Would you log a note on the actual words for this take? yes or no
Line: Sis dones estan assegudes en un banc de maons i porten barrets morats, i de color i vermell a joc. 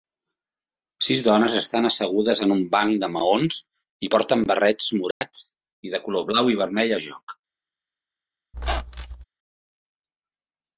yes